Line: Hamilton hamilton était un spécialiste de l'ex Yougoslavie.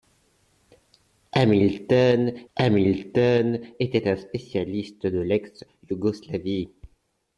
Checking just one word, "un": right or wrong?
right